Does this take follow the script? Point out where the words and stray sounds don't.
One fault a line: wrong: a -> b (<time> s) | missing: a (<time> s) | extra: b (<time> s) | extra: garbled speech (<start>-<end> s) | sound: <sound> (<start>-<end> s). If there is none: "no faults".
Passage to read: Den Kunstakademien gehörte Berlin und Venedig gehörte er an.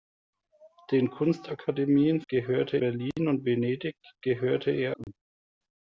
sound: dropout (5.0-5.1 s)